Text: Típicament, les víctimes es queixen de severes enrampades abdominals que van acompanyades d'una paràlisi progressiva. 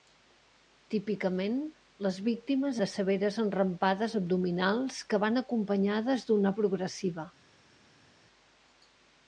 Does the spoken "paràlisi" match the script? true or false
false